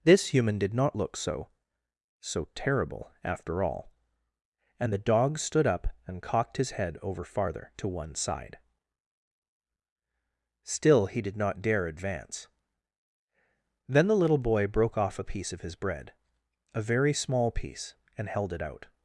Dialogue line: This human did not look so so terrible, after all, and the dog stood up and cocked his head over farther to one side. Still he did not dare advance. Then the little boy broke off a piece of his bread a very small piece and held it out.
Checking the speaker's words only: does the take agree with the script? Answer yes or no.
yes